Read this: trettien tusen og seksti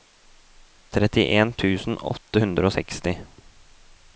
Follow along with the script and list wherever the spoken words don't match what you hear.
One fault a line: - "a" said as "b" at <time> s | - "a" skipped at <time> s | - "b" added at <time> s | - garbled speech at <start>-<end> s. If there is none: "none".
- "åtte hundre" added at 2.1 s